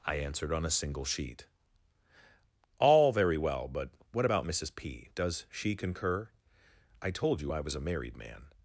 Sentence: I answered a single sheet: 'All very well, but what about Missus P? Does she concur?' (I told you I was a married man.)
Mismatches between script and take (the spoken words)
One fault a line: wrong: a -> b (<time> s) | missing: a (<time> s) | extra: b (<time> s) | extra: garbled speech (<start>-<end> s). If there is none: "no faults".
extra: on (0.5 s)